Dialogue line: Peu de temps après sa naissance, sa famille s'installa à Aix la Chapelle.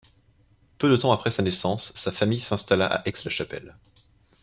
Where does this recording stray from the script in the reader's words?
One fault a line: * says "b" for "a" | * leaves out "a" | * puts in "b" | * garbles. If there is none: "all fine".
all fine